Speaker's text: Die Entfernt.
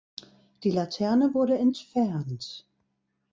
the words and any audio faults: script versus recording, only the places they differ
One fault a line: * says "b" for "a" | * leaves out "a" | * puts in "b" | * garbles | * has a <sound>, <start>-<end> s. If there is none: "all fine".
* puts in "Laterne wurde"